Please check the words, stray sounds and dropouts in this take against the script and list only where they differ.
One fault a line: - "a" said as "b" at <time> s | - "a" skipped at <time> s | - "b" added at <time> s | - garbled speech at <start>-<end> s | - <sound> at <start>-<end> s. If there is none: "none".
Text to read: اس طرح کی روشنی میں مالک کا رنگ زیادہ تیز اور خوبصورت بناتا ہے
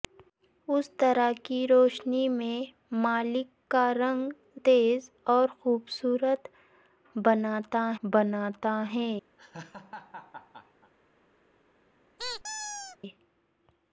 - "زیادہ" skipped at 4.3 s
- "بناتا" added at 8.0 s
- laugh at 9.4-10.9 s
- squeak at 12.2-13.0 s